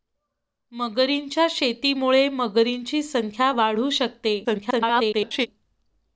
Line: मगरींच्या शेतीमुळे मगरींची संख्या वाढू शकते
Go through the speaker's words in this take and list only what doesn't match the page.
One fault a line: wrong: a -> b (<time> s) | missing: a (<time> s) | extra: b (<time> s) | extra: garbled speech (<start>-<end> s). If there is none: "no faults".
extra: garbled speech (4.4-5.5 s)